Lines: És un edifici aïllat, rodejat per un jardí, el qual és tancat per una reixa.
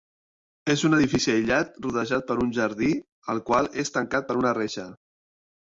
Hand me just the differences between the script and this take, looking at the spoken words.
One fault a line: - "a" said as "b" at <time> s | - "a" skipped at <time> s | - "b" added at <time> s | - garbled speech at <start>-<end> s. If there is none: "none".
none